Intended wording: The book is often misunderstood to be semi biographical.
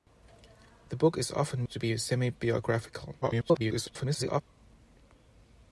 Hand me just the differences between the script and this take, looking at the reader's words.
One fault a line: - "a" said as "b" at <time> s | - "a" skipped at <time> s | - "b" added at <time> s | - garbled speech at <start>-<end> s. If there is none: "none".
- "misunderstood" skipped at 1.6 s
- garbled speech at 3.2-4.4 s